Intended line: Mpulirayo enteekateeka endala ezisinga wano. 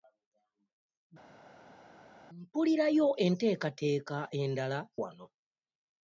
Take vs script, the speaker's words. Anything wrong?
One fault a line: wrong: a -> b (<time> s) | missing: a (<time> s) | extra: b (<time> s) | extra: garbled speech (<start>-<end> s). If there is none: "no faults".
missing: ezisinga (4.8 s)